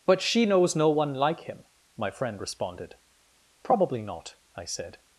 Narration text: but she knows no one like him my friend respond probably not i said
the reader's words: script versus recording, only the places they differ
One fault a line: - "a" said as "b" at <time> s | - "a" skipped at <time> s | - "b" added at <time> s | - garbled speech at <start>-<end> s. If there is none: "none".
- "respond" said as "responded" at 2.4 s